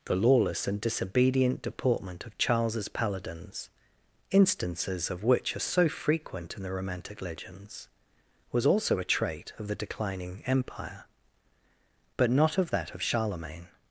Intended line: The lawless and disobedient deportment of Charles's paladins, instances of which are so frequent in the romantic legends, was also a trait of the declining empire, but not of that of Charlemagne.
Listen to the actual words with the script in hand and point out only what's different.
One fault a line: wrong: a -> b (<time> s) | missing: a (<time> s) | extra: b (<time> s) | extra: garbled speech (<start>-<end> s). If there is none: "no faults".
no faults